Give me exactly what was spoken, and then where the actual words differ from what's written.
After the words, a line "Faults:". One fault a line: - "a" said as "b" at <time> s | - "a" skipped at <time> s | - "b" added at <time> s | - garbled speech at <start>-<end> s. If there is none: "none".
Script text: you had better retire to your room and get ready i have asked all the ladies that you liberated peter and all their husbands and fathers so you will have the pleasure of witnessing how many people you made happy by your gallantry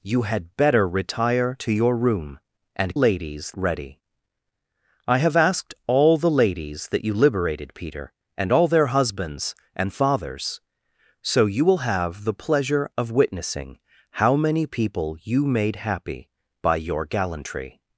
you had better retire to your room and ladies ready i have asked all the ladies that you liberated peter and all their husbands and fathers so you will have the pleasure of witnessing how many people you made happy by your gallantry
Faults:
- "get" said as "ladies" at 2.9 s